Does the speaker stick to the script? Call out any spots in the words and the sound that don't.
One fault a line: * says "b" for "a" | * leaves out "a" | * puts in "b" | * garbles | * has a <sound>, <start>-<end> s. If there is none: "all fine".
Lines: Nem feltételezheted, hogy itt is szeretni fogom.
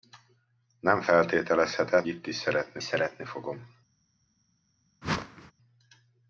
* leaves out "hogy"
* puts in "szeretni"
* has a whoosh, 5.0-5.5 s